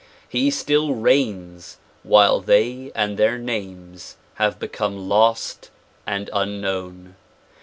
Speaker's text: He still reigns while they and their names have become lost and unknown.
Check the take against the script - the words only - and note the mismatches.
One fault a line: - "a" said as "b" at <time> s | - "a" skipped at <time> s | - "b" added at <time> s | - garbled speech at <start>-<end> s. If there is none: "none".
none